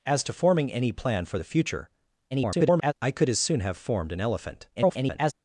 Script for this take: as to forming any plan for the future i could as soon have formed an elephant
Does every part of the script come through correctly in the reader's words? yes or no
no